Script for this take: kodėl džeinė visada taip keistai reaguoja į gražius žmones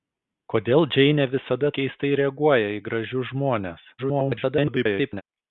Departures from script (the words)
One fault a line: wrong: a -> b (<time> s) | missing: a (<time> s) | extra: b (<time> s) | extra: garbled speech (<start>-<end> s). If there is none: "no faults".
missing: taip (1.7 s)
extra: garbled speech (4.0-5.2 s)